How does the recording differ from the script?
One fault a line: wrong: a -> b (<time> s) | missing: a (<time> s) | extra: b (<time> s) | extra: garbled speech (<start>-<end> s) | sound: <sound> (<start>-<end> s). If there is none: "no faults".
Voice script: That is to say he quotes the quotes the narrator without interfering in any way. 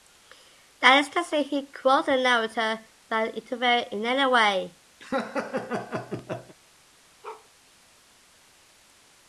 missing: quotes the (2.2 s)
sound: laugh (5.0-6.6 s)
sound: bark (7.2-7.5 s)